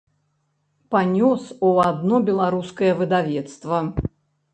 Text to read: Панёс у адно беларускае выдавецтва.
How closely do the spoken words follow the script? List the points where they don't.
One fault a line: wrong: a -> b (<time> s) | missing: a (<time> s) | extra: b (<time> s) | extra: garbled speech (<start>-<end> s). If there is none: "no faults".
no faults